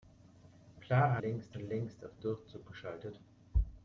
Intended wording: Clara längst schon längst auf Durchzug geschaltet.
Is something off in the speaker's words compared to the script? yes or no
no